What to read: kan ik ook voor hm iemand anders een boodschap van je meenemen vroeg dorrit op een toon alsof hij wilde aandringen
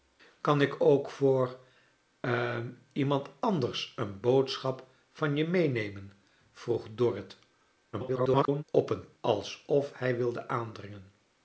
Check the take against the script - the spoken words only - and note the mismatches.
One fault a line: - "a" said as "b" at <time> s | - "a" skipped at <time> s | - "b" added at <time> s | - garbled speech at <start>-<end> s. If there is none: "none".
- garbled speech at 7.9-8.6 s
- "toon" skipped at 9.0 s